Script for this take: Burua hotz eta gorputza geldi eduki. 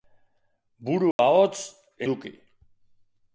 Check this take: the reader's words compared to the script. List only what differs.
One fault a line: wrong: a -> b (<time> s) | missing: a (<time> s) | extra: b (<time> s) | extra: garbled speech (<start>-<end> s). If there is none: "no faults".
missing: eta gorputza geldi (1.6 s)